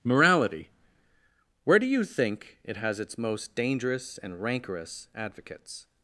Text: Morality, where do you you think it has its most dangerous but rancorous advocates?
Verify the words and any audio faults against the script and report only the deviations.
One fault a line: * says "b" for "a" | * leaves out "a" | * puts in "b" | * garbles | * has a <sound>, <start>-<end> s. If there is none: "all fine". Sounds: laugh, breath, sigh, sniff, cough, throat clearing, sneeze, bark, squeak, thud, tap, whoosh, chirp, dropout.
* leaves out "you"
* says "and" for "but"